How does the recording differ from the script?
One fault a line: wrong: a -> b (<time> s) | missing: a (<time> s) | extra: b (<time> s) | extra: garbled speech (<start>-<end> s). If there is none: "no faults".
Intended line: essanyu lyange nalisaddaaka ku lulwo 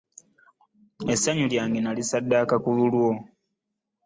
no faults